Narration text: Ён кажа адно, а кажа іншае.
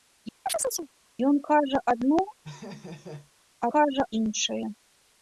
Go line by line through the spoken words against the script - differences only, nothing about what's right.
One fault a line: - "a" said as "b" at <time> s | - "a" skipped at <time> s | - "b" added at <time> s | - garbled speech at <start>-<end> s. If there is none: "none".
none